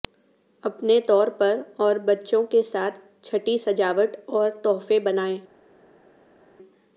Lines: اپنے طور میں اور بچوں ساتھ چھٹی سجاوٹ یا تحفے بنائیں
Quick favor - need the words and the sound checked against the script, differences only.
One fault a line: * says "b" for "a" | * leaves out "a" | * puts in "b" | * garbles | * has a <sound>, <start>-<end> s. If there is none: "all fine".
* says "پر" for "میں"
* puts in "کے"
* says "اور" for "یا"